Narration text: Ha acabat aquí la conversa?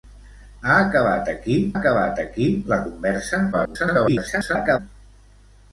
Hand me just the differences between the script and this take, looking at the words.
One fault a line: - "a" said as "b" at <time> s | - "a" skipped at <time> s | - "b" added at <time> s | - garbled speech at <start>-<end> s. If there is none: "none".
- "acabat aquí" added at 1.8 s
- garbled speech at 3.5-4.8 s